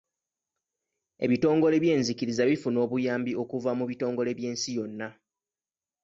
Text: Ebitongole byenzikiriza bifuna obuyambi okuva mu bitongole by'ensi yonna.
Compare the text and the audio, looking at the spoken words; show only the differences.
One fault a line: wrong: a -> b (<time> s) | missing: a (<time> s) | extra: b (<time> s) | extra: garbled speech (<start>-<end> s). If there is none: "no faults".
no faults